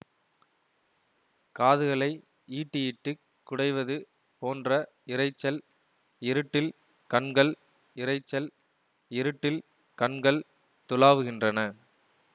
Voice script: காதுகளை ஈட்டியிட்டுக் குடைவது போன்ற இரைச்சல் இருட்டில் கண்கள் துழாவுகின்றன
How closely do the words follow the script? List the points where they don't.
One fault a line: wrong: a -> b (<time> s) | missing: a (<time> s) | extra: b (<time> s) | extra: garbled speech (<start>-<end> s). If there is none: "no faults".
extra: இரைச்சல் இருட்டில் கண்கள் (8.0 s)